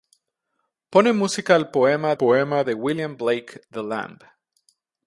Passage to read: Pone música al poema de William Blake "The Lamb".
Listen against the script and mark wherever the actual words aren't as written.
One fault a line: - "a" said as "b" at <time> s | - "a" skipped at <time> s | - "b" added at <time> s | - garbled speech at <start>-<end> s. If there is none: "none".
- "poema" added at 2.1 s